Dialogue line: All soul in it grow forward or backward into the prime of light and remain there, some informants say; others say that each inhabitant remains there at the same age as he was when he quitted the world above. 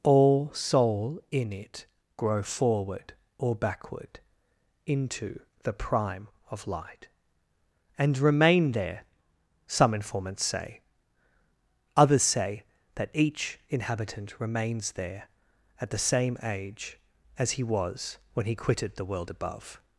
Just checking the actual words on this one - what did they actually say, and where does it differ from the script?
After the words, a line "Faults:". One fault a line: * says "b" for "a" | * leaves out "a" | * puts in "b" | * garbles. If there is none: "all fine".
All soul in it grow forward or backward into the prime of light and remain there, some informants say; others say that each inhabitant remains there at the same age as he was when he quitted the world above.
Faults:
all fine